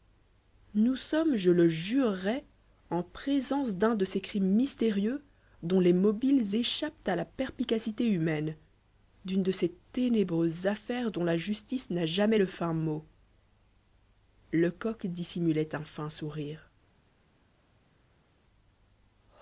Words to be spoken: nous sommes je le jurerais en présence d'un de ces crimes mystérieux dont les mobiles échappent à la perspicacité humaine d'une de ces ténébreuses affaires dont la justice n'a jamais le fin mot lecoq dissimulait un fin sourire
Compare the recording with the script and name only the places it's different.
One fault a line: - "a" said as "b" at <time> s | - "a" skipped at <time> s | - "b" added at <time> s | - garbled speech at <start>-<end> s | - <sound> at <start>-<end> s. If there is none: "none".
none